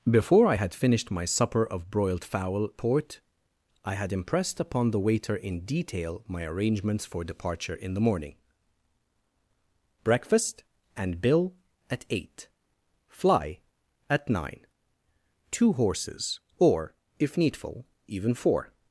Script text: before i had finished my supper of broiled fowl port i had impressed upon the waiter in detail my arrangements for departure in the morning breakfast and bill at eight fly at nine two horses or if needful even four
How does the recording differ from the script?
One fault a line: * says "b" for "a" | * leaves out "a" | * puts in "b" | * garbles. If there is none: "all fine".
all fine